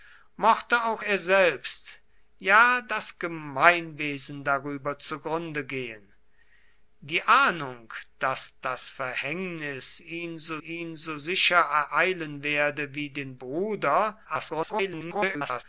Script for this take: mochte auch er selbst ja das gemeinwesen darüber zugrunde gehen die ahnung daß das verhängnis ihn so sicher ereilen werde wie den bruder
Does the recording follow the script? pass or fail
fail